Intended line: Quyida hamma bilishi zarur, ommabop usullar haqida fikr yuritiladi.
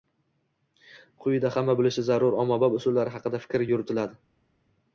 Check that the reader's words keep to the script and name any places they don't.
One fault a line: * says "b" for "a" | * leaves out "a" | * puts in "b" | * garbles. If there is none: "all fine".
all fine